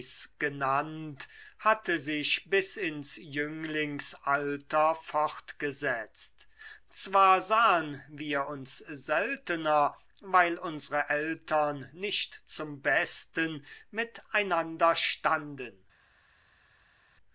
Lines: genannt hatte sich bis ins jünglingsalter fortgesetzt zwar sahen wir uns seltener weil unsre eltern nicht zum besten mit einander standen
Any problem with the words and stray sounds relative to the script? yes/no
no